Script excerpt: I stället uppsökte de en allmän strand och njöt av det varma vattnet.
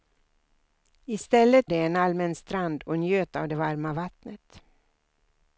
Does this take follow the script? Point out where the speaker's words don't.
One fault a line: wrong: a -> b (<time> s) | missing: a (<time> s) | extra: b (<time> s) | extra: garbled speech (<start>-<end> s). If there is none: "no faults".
missing: uppsökte (1.7 s)